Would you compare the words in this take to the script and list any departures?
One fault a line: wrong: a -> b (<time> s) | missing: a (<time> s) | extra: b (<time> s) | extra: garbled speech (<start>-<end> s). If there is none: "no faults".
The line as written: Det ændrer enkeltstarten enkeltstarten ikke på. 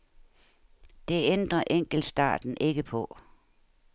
missing: enkeltstarten (2.6 s)